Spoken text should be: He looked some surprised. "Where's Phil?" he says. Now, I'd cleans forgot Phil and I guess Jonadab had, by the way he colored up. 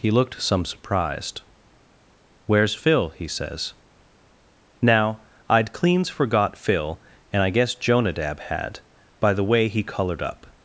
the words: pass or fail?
pass